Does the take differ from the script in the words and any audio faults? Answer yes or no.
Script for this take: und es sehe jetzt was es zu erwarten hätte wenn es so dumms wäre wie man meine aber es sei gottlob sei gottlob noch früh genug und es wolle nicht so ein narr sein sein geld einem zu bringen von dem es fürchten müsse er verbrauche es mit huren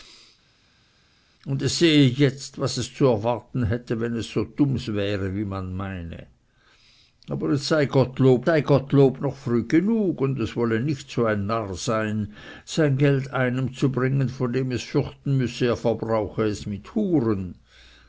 no